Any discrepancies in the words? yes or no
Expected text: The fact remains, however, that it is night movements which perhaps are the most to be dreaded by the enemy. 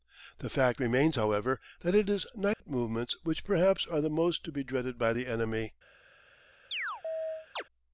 no